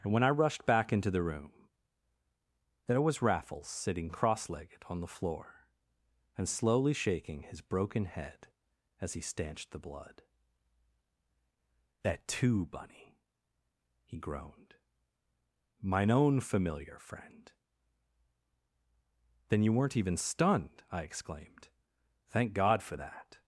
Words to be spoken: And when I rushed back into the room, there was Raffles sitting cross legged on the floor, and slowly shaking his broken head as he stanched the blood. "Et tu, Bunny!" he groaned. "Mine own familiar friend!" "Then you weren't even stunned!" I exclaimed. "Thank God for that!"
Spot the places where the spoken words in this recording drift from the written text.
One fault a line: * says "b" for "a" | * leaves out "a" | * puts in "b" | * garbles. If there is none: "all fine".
* says "That too" for "Et tu"